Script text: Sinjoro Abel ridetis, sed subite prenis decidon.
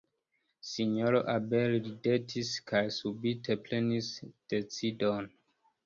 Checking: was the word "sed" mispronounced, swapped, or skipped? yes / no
yes